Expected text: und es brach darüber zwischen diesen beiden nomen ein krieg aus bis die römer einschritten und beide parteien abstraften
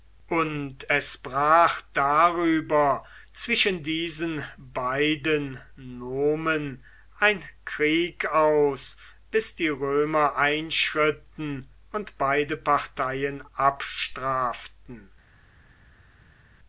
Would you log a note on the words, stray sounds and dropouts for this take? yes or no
no